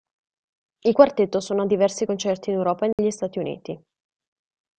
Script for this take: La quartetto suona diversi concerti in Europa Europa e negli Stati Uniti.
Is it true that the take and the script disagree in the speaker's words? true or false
true